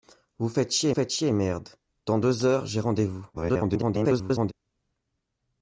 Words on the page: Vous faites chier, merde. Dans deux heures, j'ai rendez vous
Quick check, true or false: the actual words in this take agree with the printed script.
false